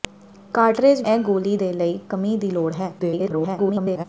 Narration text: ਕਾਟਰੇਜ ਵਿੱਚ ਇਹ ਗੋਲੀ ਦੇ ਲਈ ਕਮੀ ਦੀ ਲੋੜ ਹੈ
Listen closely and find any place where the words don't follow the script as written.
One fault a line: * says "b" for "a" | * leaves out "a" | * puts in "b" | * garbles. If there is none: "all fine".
* leaves out "ਵਿੱਚ"
* garbles